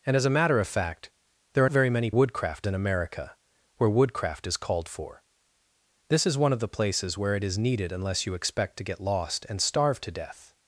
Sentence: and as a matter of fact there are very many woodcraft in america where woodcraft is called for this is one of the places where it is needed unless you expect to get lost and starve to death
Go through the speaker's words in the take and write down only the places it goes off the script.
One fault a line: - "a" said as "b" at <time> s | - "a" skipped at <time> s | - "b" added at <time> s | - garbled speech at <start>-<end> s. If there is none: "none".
none